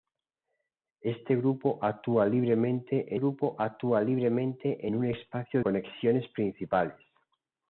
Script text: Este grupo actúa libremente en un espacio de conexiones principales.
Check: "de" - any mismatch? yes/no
yes